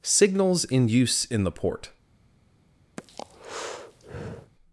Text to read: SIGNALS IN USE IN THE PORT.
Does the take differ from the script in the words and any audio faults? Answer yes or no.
yes